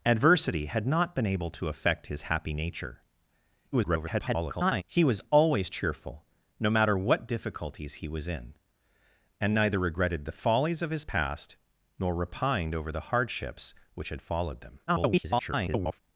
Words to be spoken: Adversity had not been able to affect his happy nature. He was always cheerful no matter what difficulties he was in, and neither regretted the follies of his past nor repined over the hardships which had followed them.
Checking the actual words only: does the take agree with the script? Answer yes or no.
no